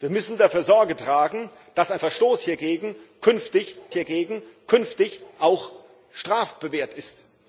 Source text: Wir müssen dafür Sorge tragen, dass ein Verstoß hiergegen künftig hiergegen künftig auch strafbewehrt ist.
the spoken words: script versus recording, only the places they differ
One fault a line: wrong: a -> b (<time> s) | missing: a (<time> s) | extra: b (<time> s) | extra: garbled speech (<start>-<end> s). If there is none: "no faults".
no faults